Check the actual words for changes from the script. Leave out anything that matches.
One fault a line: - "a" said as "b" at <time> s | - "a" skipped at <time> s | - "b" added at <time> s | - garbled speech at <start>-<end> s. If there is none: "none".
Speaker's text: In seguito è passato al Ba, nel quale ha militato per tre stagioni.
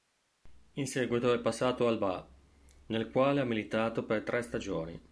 none